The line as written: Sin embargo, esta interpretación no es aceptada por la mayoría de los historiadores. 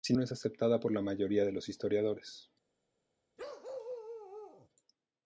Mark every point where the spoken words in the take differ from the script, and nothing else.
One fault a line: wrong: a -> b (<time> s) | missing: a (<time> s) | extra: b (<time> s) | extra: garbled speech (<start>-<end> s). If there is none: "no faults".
missing: embargo esta interpretación (0.2 s)